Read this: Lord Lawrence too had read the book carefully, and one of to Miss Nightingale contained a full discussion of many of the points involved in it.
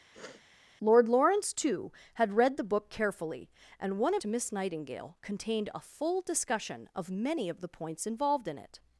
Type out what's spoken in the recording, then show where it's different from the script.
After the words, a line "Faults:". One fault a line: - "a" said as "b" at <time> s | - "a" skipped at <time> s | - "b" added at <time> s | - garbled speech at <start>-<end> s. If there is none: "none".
Lord Lawrence too had read the book carefully, and one of to Miss Nightingale contained a full discussion of many of the points involved in it.
Faults:
none